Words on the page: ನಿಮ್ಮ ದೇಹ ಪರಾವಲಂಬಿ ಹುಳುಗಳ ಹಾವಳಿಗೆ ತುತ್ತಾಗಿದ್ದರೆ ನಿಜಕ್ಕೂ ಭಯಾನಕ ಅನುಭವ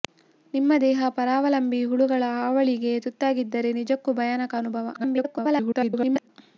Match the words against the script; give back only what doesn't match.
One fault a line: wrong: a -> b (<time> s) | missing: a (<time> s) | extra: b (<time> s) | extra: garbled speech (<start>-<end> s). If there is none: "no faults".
extra: garbled speech (4.9-6.3 s)